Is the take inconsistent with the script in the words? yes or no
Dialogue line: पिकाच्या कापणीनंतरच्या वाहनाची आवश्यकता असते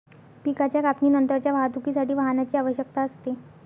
yes